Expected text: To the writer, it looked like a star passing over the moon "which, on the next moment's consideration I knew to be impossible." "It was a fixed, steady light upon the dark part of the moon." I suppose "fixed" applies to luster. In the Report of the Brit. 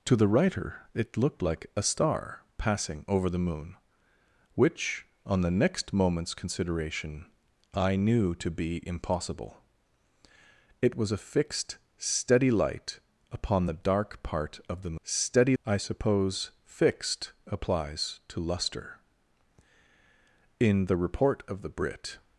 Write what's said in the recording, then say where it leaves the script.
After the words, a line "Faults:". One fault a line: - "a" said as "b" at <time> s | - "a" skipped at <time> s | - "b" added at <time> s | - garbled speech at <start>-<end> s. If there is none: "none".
To the writer, it looked like a star passing over the moon "which, on the next moment's consideration I knew to be impossible." "It was a fixed, steady light upon the dark part of the steady." I suppose "fixed" applies to luster. In the Report of the Brit.
Faults:
- "moon" said as "steady" at 15.0 s